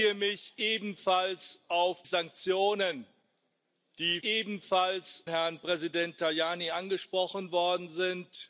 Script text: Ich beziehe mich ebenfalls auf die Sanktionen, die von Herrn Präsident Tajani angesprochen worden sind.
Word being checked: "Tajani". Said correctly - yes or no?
yes